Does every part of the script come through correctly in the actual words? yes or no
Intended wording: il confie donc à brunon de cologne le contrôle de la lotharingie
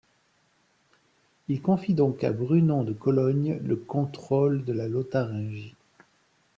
yes